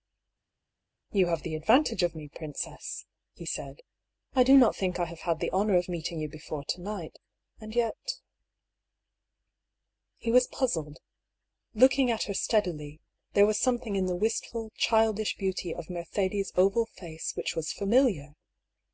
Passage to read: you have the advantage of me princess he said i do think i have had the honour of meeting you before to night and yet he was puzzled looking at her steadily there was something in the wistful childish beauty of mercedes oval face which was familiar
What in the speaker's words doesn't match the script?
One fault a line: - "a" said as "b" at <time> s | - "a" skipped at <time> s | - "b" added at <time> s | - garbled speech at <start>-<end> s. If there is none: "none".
- "not" added at 4.6 s